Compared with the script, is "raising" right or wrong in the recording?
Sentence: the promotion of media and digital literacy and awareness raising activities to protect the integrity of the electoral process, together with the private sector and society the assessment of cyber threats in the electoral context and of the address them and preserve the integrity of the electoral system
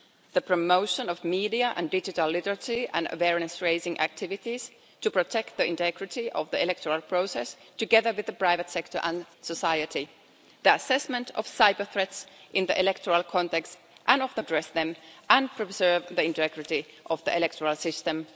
right